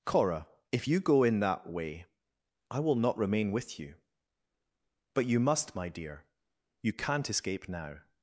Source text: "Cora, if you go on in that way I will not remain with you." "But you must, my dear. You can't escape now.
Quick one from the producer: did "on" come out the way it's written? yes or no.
no